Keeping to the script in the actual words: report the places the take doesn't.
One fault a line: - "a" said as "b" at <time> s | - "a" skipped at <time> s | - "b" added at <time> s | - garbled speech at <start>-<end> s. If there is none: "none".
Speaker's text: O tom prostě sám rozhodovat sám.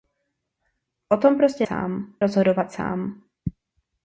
none